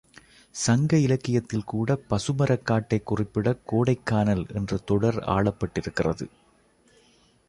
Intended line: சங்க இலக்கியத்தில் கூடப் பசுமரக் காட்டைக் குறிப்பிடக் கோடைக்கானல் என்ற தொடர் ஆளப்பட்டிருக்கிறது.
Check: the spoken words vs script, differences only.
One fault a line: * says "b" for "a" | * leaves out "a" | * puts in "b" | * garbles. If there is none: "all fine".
all fine